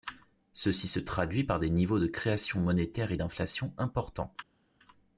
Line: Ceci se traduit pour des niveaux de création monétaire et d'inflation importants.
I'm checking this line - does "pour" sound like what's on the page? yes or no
no